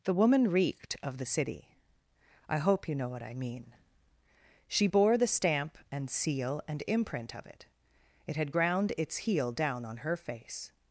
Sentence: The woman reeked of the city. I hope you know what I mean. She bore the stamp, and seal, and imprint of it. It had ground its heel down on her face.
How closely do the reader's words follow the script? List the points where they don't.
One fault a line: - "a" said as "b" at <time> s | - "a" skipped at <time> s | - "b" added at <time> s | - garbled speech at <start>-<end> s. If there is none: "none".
none